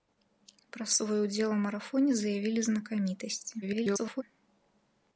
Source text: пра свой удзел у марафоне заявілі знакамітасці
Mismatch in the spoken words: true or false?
true